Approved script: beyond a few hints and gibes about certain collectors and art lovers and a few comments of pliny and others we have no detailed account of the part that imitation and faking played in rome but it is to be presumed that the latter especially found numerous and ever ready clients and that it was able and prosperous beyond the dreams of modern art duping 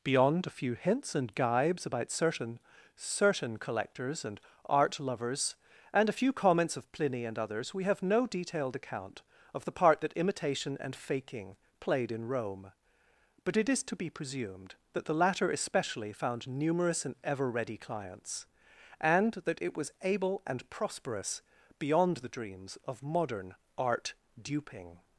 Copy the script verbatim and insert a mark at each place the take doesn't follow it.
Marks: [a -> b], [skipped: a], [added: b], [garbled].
beyond a few hints and gibes about certain [added: certain] collectors and art lovers and a few comments of pliny and others we have no detailed account of the part that imitation and faking played in rome but it is to be presumed that the latter especially found numerous and ever ready clients and that it was able and prosperous beyond the dreams of modern art duping